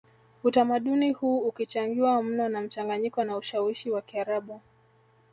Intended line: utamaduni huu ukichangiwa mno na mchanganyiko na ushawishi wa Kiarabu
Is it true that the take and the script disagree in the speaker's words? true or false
false